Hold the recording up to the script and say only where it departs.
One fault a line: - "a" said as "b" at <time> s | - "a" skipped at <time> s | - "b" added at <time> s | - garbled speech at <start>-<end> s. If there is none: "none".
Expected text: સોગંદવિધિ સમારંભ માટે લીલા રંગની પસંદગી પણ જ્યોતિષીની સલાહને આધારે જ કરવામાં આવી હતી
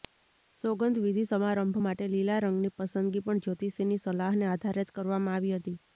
none